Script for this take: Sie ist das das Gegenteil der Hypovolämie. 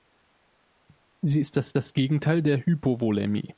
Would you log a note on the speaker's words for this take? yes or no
no